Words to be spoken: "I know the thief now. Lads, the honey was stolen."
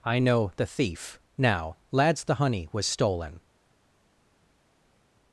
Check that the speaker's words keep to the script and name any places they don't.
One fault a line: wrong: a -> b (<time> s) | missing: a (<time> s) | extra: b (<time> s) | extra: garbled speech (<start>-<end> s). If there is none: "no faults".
no faults